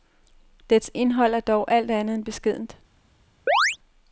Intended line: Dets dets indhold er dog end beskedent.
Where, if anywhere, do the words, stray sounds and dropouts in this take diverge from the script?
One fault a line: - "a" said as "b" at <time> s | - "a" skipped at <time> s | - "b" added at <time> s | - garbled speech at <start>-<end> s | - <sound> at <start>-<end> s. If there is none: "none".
- "dets" skipped at 0.9 s
- "alt andet" added at 1.7 s
- chirp at 3.5-3.8 s